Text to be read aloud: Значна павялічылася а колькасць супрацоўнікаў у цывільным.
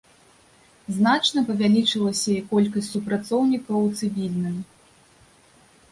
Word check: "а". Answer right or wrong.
wrong